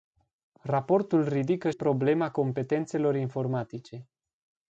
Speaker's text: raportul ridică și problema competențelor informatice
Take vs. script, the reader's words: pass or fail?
fail